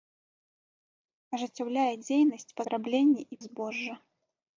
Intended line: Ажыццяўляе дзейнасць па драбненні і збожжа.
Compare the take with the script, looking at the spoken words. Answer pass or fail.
pass